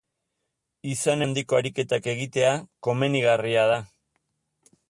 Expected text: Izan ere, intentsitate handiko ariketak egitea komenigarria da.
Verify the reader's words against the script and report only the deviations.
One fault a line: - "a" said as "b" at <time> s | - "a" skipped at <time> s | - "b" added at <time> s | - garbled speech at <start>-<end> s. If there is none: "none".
- "ere intentsitate" skipped at 1.2 s